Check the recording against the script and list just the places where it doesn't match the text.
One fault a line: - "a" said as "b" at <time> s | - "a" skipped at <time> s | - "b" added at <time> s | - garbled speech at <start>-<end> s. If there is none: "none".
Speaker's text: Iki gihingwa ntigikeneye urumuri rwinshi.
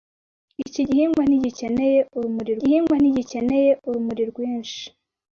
- "gihingwa ntigikeneye urumuri" added at 2.6 s